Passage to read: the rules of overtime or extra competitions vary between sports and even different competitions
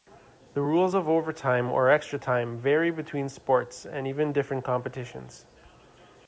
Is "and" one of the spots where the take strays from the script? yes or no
no